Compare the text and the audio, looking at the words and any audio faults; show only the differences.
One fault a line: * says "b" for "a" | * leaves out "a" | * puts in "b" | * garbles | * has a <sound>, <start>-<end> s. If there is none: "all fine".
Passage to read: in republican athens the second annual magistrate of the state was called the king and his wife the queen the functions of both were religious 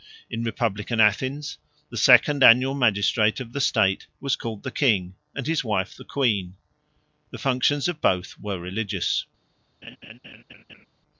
* has a laugh, 9.8-10.9 s